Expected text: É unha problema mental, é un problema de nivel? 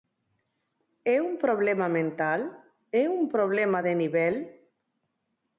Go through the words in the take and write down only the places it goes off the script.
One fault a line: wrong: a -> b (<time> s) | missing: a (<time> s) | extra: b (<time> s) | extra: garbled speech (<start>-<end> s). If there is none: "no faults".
wrong: unha -> un (1.2 s)